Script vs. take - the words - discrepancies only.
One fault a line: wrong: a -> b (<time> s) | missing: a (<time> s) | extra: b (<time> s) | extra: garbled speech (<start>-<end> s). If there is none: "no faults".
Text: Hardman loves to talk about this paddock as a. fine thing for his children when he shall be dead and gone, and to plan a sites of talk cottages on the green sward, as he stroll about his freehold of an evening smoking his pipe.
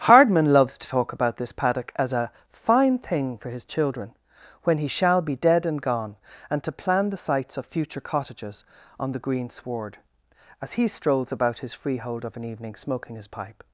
wrong: a -> the (7.1 s)
wrong: talk -> future (7.7 s)
wrong: stroll -> strolls (10.9 s)